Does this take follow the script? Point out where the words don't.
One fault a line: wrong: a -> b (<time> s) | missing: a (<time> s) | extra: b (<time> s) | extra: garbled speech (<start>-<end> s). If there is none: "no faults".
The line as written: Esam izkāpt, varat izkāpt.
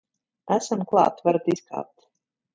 wrong: izkāpt -> klāt (0.9 s)